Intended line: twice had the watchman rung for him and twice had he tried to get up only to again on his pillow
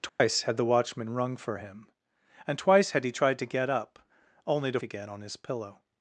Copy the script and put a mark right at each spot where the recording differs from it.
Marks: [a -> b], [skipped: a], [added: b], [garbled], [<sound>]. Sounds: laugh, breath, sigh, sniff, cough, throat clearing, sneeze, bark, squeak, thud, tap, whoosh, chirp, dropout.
twice [dropout] had the watchman rung for him and twice had he tried to get up only to again on his pillow